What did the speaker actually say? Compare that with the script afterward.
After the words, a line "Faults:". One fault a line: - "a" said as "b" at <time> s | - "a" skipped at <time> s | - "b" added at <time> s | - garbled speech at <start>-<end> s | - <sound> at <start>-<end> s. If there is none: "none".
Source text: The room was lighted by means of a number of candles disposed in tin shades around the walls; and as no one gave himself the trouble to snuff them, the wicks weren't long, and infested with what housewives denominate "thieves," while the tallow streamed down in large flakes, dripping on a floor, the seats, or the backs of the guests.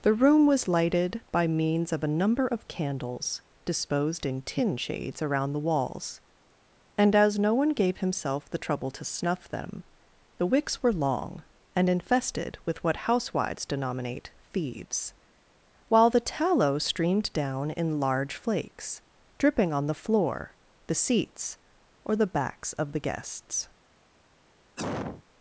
The room was lighted by means of a number of candles disposed in tin shades around the walls; and as no one gave himself the trouble to snuff them, the wicks were long, and infested with what housewives denominate "thieves," while the tallow streamed down in large flakes, dripping on the floor, the seats, or the backs of the guests.
Faults:
- "weren't" said as "were" at 10.8 s
- "a" said as "the" at 19.9 s
- cough at 24.8-25.2 s